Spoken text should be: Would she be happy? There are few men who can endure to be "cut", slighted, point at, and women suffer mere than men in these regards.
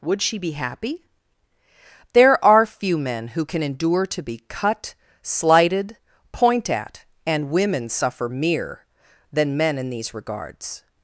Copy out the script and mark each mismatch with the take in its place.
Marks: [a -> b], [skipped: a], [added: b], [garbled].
Would she be happy? There are few men who can endure to be "cut", slighted, point at, and women suffer mere than men in these regards.